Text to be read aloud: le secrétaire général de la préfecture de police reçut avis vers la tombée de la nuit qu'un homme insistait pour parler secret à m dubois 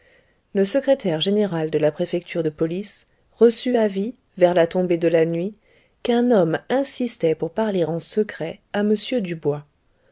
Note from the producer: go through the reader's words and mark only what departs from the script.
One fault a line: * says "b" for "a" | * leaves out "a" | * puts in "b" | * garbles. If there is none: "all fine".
* puts in "en"